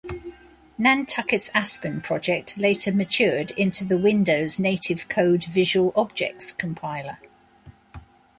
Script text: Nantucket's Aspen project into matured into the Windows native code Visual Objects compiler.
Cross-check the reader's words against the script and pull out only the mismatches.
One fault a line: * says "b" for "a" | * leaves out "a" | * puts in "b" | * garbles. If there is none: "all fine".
* says "later" for "into"